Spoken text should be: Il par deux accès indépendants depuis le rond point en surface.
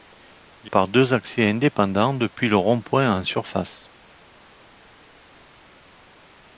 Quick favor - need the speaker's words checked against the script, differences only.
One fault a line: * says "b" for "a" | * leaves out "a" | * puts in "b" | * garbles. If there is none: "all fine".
all fine